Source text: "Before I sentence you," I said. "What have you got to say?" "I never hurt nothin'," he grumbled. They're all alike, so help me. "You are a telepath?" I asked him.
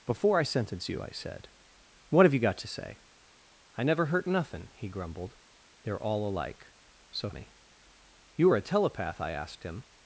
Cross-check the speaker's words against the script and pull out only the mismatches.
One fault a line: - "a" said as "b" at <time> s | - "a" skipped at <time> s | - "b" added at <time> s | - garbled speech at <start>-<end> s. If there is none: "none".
- "help" skipped at 7.3 s